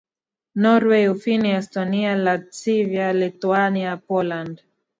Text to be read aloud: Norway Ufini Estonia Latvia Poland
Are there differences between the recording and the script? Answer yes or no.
yes